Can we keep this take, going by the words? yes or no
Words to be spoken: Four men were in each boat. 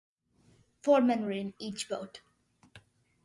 yes